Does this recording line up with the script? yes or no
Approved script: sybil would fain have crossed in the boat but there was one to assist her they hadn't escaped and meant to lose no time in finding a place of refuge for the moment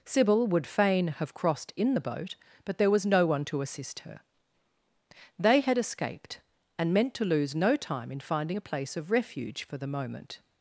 no